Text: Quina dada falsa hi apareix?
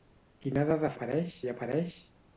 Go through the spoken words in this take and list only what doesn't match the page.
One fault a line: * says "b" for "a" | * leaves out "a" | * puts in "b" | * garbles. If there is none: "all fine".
* says "apareix" for "falsa"